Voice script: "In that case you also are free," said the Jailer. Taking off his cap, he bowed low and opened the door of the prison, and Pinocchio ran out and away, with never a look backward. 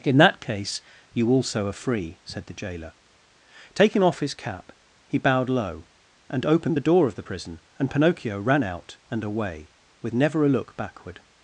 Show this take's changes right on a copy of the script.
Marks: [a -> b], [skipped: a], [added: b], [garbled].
"In that case you also are free," said the Jailer. Taking off his cap, he bowed low and opened the door of the prison, and Pinocchio ran out and away, with never a look backward.